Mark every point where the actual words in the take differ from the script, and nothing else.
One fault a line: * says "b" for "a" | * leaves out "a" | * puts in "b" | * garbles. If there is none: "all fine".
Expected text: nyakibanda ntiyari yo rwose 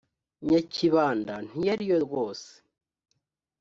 all fine